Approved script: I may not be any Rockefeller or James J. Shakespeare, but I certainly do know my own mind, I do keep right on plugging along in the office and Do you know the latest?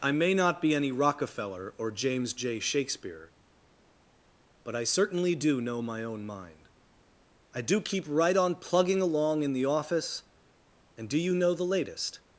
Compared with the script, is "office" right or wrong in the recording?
right